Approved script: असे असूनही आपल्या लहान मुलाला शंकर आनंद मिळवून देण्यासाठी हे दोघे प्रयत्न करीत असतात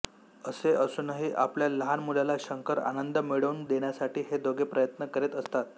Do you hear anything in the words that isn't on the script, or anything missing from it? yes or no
no